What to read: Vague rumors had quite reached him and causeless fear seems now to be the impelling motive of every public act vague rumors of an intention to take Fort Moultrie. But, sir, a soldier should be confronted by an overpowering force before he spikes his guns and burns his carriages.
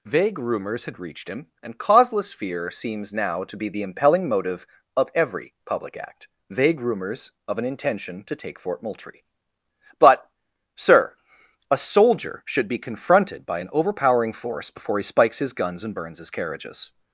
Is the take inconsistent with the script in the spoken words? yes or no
yes